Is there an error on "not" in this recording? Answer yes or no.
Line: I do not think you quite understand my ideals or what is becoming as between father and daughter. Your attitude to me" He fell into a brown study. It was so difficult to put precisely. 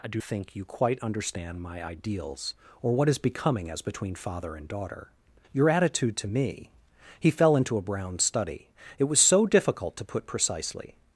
yes